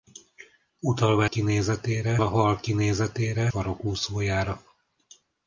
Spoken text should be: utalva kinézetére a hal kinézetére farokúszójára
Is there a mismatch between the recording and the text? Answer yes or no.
no